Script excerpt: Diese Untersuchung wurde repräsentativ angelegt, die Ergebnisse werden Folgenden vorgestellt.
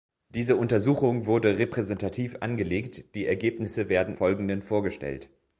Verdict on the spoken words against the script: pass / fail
pass